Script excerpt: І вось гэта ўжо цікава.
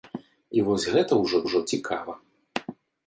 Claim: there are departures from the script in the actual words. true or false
true